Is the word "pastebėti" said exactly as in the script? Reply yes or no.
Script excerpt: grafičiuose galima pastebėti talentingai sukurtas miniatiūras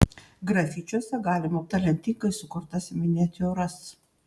no